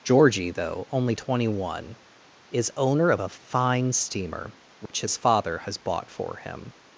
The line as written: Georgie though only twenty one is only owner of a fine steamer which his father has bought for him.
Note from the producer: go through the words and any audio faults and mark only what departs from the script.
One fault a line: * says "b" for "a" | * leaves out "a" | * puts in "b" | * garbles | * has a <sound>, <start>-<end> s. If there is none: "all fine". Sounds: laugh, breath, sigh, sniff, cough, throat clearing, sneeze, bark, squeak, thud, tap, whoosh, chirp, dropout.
* leaves out "only"
* has a dropout, 4.9-4.9 s